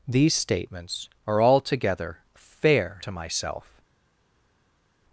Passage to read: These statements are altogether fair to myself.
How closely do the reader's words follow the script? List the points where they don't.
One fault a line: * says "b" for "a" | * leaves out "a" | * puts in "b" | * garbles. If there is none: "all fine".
all fine